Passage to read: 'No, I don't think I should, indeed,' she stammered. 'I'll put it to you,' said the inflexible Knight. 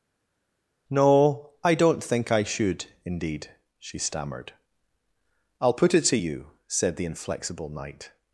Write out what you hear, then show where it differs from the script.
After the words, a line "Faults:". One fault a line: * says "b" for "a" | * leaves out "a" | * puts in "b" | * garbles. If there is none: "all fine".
'No, I don't think I should, indeed,' she stammered. 'I'll put it to you,' said the inflexible Knight.
Faults:
all fine